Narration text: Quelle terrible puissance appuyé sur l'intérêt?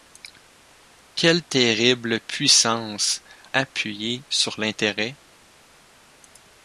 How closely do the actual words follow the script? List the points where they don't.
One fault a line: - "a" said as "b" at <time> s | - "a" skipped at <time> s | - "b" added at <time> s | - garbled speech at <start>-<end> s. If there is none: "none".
none